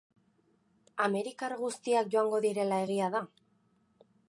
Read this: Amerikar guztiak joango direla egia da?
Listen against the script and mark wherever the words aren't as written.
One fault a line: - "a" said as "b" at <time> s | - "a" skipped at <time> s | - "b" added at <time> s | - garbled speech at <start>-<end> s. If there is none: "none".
none